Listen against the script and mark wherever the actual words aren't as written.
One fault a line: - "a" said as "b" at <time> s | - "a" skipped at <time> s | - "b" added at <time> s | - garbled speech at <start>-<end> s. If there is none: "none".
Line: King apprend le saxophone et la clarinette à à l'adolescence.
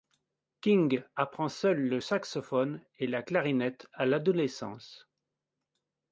- "seul" added at 1.5 s
- "à" skipped at 4.1 s